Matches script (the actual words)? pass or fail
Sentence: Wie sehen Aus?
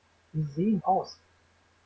pass